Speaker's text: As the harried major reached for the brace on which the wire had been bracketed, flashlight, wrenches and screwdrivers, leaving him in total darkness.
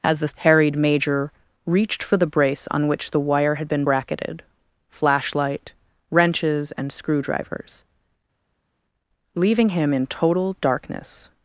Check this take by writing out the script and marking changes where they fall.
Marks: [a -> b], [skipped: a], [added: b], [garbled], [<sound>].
As the harried major reached for the brace on which the wire had been bracketed, flashlight, wrenches and screwdrivers, leaving him in total darkness.